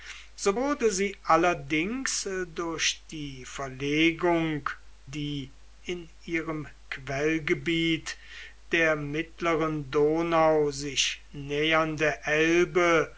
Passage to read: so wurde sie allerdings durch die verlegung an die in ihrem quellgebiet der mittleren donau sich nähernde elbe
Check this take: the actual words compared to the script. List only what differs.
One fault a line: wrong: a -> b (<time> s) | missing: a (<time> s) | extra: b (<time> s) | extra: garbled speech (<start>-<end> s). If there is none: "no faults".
missing: an (4.7 s)